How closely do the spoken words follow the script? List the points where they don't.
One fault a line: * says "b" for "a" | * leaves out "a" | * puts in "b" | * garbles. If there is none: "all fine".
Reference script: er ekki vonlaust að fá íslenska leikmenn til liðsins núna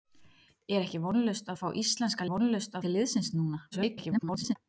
* says "vonlaust" for "leikmenn"
* garbles